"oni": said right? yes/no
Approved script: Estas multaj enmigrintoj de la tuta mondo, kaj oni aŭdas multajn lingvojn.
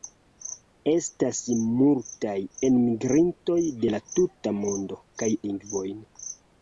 no